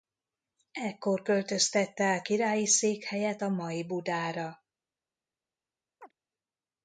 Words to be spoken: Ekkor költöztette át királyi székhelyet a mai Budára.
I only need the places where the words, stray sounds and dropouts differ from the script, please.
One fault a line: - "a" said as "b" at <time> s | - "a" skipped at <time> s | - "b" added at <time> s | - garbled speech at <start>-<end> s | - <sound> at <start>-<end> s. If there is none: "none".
- chirp at 6.0-6.1 s